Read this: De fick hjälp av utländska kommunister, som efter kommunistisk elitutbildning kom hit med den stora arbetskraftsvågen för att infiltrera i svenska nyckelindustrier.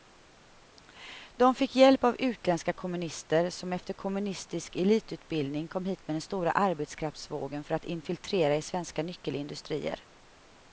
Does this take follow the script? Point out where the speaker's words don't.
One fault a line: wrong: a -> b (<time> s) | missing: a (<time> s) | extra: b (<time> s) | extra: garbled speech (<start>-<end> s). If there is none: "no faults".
no faults